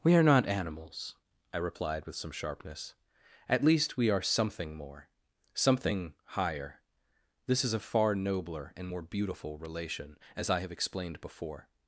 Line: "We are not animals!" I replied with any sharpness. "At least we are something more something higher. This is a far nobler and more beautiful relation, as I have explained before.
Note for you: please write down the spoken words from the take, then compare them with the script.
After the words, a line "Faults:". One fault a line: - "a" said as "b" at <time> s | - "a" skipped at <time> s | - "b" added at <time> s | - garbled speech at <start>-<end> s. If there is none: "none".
"We are not animals!" I replied with some sharpness. "At least we are something more something higher. This is a far nobler and more beautiful relation, as I have explained before.
Faults:
- "any" said as "some" at 2.2 s